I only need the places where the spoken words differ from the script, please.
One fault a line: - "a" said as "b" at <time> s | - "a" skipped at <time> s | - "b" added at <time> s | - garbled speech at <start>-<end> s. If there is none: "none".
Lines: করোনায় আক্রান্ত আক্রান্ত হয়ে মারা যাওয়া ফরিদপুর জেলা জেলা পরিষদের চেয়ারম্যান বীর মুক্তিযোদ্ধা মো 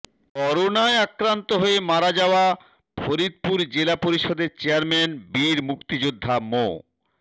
- "আক্রান্ত" skipped at 1.5 s
- "জেলা" skipped at 4.0 s